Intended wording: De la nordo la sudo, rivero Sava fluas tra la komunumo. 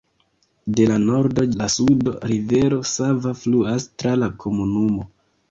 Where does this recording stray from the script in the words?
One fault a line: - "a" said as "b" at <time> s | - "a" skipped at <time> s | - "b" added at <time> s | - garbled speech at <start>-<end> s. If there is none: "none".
none